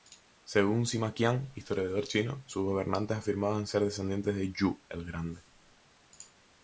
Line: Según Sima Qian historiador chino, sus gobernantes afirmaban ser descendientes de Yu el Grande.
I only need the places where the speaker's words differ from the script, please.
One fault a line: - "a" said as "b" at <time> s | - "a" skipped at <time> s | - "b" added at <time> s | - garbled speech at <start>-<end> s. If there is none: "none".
none